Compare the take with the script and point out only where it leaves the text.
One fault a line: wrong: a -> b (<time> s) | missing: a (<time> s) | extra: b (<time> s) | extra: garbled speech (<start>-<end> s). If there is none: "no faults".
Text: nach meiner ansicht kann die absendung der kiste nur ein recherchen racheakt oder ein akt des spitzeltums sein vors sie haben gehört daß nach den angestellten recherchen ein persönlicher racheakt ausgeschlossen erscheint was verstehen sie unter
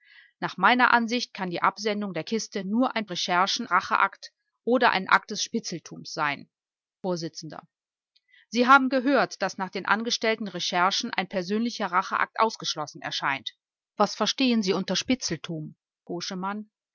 no faults